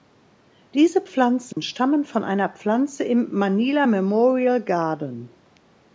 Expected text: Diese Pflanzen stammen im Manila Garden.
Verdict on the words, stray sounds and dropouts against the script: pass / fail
fail